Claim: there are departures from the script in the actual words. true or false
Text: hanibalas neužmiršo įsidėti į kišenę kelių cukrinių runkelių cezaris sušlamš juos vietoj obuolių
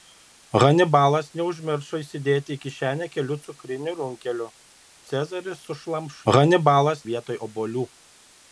true